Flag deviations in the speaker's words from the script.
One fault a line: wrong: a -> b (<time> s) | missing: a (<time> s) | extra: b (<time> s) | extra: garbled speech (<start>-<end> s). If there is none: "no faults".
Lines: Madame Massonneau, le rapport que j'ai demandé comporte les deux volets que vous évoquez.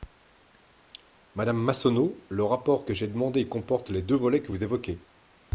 no faults